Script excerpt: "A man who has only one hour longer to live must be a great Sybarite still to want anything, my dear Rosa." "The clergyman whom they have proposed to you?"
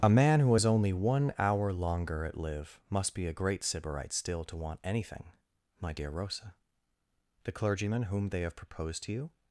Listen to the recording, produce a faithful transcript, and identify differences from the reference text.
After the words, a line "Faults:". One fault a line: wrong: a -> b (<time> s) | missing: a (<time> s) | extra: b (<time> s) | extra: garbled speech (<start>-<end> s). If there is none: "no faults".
"A man who has only one hour longer at live must be a great Sybarite still to want anything, my dear Rosa." "The clergyman whom they have proposed to you?"
Faults:
wrong: to -> at (2.2 s)